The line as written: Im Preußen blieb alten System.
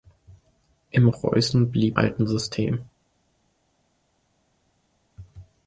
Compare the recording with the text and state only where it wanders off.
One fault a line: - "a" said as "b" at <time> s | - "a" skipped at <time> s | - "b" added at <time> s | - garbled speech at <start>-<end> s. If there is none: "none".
none